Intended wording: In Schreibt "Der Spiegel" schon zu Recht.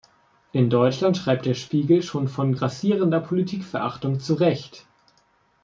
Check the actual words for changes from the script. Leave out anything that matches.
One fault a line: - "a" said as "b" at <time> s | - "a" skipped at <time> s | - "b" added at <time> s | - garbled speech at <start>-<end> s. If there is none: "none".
- "Deutschland" added at 0.7 s
- "von grassierender Politikverachtung" added at 2.3 s